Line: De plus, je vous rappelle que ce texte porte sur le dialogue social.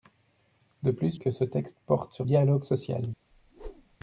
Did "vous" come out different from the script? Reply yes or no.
yes